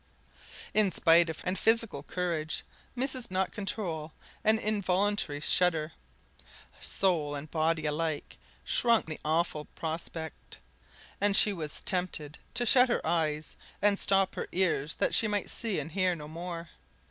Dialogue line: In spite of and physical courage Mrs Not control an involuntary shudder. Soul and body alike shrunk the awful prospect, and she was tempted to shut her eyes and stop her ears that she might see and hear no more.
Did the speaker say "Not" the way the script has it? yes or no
yes